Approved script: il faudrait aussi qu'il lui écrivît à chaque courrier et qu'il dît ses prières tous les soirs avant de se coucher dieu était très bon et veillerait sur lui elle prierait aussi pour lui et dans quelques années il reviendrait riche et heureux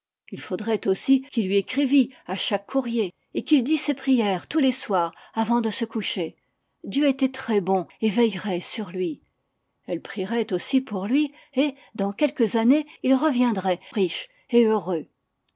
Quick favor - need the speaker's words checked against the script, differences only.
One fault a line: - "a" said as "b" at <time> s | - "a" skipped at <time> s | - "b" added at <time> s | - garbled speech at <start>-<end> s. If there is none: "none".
none